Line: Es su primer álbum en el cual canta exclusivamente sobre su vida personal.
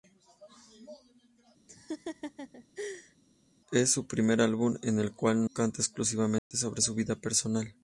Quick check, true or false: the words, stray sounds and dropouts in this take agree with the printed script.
false